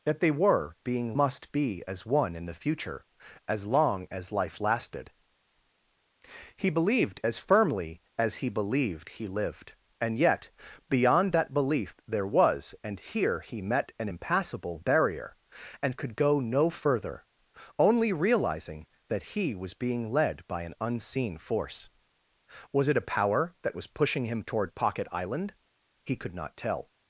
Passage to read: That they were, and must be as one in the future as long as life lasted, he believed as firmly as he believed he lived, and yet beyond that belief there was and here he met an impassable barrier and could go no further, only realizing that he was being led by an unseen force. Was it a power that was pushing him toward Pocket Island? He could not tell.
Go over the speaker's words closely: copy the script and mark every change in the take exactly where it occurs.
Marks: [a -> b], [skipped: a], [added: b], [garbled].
That they were, [and -> being] must be as one in the future as long as life lasted, he believed as firmly as he believed he lived, and yet beyond that belief there was and here he met an impassable barrier and could go no further, only realizing that he was being led by an unseen force. Was it a power that was pushing him toward Pocket Island? He could not tell.